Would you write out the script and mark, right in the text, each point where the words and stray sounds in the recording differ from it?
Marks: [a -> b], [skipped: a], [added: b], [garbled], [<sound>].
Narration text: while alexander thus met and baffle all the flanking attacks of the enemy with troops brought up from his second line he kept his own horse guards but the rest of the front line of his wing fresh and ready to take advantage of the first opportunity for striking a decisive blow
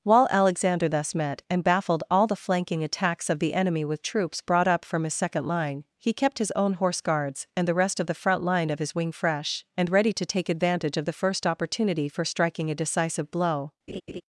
while alexander thus met and [baffle -> baffled] all the flanking attacks of the enemy with troops brought up from his second line he kept his own horse guards [but -> and] the rest of the front line of his wing fresh and ready to take advantage of the first opportunity for striking a decisive blow [laugh]